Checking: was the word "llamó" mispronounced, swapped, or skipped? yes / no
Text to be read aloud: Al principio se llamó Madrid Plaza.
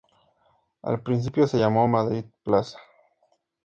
no